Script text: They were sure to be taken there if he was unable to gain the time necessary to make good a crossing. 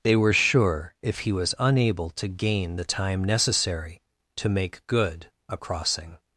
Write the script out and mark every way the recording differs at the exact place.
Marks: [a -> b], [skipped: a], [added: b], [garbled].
They were sure [skipped: to be taken there] if he was unable to gain the time necessary to make good a crossing.